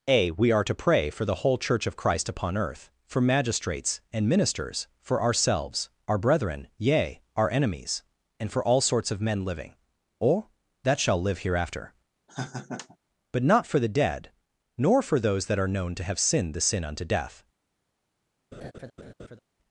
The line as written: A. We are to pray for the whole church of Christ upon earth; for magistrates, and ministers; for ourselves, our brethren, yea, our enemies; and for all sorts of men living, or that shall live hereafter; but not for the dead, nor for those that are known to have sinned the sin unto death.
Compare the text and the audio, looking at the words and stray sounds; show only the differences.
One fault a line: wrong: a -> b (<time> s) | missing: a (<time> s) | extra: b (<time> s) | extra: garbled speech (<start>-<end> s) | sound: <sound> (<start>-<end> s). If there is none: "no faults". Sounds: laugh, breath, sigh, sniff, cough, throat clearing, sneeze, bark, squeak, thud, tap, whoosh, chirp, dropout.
sound: laugh (12.3-13.0 s)
sound: laugh (18.5-19.4 s)